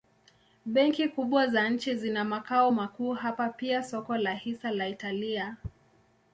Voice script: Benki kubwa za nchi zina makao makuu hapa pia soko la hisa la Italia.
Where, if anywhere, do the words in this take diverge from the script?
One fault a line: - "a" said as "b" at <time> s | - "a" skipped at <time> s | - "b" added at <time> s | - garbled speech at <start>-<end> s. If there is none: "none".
none